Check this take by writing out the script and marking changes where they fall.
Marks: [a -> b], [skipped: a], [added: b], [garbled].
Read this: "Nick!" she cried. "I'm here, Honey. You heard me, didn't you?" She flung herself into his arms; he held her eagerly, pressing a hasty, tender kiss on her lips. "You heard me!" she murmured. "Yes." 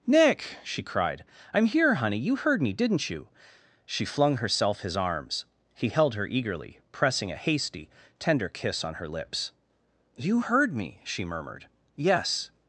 "Nick!" she cried. "I'm here, Honey. You heard me, didn't you?" She flung herself [skipped: into] his arms; he held her eagerly, pressing a hasty, tender kiss on her lips. "You heard me!" she murmured. "Yes."